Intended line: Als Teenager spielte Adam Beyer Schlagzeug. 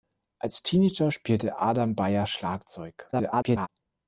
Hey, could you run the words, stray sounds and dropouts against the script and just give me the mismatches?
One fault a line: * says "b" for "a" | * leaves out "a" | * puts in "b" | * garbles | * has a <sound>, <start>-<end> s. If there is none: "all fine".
* garbles